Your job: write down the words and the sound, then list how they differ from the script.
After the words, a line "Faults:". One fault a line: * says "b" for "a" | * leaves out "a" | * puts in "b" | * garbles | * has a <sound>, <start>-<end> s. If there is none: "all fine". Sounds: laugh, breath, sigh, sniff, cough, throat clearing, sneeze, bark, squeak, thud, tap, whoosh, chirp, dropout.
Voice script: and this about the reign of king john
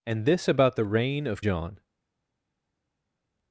and this about the reign of john
Faults:
* leaves out "king"